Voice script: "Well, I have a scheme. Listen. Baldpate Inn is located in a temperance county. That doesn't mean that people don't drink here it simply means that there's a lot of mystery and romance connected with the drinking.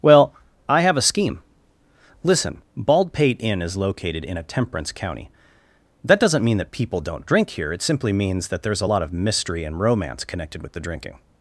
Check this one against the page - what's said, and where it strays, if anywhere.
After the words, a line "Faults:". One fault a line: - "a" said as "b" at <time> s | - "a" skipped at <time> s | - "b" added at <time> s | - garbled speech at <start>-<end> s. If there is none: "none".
"Well, I have a scheme. Listen. Baldpate Inn is located in a temperance county. That doesn't mean that people don't drink here it simply means that there's a lot of mystery and romance connected with the drinking.
Faults:
none